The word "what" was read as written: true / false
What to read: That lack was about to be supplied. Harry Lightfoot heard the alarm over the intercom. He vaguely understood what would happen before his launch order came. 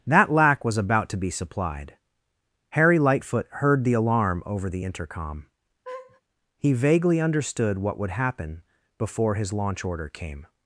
true